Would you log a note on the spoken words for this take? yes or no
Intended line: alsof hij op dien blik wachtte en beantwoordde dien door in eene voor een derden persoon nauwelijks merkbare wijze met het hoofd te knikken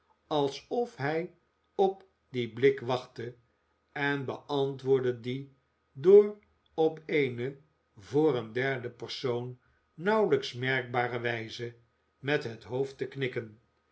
yes